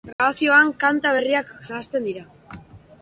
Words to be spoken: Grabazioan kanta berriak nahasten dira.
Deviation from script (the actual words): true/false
false